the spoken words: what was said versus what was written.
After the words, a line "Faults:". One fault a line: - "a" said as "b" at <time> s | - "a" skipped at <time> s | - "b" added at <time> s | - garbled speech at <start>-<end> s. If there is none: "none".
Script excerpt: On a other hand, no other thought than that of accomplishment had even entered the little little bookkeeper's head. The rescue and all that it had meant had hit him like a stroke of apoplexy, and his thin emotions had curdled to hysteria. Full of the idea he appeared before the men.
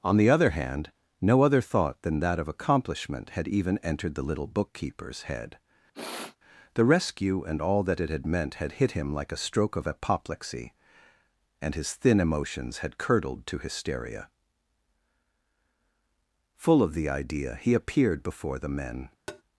On the other hand, no other thought than that of accomplishment had even entered the little bookkeeper's head. The rescue and all that it had meant had hit him like a stroke of apoplexy, and his thin emotions had curdled to hysteria. Full of the idea he appeared before the men.
Faults:
- "a" said as "the" at 0.2 s
- "little" skipped at 4.5 s